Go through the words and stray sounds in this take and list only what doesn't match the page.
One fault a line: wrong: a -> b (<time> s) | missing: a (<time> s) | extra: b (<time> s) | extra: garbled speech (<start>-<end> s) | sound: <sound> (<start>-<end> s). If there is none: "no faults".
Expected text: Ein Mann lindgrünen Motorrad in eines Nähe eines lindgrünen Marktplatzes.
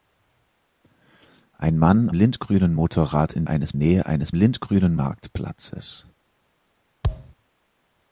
sound: thud (7.0-7.3 s)